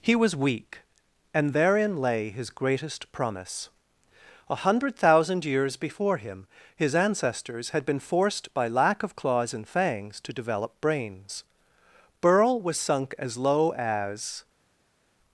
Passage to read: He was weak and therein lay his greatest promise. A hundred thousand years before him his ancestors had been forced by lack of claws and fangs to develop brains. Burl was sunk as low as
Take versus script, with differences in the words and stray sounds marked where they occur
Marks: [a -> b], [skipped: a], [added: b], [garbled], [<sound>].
He was weak and therein lay his greatest promise. A hundred thousand years before him his ancestors had been forced by lack of claws and fangs to develop brains. Burl was sunk as low as